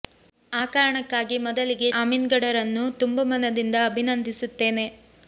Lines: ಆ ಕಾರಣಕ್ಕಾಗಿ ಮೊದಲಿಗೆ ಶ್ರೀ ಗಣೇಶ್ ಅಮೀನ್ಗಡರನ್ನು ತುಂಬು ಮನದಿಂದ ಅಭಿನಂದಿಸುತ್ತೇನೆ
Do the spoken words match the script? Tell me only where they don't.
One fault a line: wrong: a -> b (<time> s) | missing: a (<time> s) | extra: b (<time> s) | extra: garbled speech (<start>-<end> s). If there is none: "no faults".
missing: ಶ್ರೀ ಗಣೇಶ್ (1.9 s)